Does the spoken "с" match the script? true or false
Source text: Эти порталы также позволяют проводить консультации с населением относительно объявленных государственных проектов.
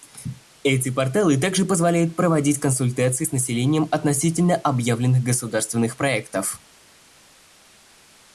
true